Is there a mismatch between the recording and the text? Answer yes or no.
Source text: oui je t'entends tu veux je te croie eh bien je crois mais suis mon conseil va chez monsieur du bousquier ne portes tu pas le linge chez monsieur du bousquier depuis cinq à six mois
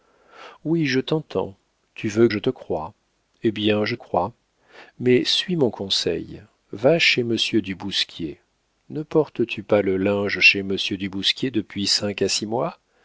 no